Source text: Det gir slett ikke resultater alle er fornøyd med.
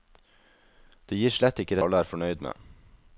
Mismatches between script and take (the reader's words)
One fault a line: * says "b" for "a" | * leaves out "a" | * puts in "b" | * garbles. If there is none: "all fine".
* leaves out "resultater"